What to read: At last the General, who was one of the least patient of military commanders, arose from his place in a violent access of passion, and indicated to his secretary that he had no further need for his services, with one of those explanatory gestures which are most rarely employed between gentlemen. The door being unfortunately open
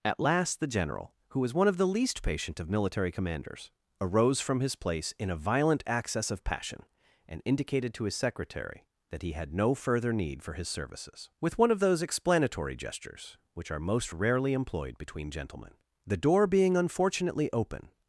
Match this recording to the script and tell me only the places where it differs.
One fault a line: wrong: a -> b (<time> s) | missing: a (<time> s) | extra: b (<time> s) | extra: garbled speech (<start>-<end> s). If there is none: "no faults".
no faults